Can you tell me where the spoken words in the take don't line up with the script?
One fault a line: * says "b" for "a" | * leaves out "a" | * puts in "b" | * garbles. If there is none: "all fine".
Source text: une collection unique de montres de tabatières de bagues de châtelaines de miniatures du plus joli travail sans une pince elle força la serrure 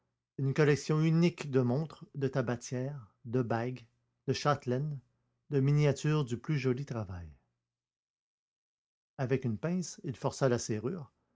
* says "avec" for "sans"
* says "il" for "elle"